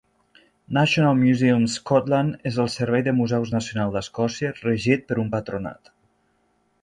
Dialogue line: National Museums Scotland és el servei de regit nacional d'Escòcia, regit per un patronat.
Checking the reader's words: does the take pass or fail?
fail